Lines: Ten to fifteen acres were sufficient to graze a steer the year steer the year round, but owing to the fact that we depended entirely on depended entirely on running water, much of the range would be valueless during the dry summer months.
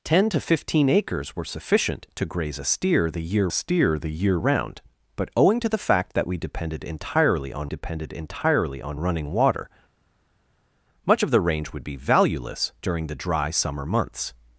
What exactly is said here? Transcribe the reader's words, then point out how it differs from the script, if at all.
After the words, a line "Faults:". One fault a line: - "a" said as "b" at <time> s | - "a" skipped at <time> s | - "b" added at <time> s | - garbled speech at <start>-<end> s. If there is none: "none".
Ten to fifteen acres were sufficient to graze a steer the year steer the year round, but owing to the fact that we depended entirely on depended entirely on running water, much of the range would be valueless during the dry summer months.
Faults:
none